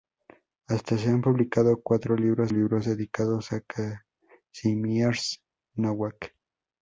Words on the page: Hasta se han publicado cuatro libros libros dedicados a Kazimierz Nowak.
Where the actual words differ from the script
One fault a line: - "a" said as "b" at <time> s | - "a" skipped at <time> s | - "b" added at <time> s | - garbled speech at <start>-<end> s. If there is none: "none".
none